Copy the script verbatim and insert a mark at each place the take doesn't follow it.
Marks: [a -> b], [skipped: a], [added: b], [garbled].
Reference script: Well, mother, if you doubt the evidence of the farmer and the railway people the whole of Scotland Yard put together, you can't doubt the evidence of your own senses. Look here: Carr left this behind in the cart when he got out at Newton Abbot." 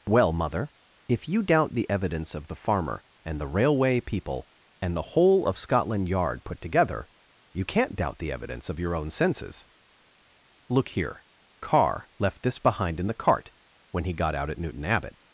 Well, mother, if you doubt the evidence of the farmer and the railway people [added: and] the whole of Scotland Yard put together, you can't doubt the evidence of your own senses. Look here: Carr left this behind in the cart when he got out at Newton Abbot."